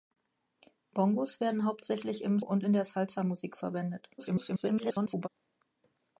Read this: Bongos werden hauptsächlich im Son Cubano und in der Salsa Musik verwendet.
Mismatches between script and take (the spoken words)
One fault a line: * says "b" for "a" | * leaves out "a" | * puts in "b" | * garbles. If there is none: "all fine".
* leaves out "Son Cubano"
* garbles